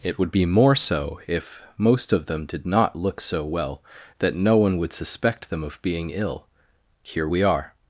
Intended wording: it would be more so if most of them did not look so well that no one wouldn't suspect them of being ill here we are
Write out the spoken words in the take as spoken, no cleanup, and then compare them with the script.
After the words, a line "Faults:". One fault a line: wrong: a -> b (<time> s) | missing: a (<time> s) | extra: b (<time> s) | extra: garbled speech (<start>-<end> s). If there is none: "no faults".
it would be more so if most of them did not look so well that no one would suspect them of being ill here we are
Faults:
wrong: wouldn't -> would (4.8 s)